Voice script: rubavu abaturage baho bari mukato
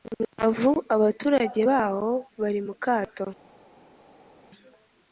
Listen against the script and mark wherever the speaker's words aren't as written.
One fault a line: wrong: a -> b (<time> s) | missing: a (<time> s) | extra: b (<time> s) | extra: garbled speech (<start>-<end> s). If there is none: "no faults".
no faults